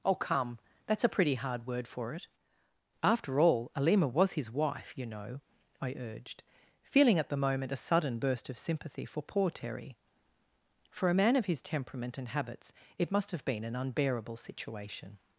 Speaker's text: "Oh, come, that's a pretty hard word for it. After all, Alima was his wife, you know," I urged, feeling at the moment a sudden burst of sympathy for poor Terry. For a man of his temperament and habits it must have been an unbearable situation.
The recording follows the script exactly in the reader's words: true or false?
true